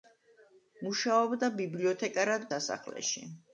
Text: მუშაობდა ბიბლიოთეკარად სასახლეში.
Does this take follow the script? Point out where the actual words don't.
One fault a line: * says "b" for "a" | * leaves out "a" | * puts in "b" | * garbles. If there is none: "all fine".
all fine